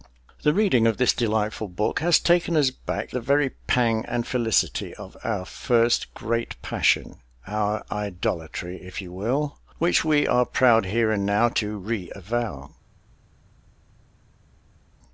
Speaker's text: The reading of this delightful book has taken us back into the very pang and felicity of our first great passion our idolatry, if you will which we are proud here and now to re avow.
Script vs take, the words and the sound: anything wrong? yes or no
yes